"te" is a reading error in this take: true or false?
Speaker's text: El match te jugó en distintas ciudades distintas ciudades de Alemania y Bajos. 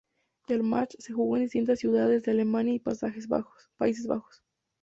true